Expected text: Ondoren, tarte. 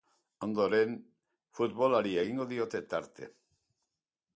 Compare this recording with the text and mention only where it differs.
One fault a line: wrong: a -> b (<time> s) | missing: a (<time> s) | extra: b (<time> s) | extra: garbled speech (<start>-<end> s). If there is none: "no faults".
extra: futbolari egingo diote (1.6 s)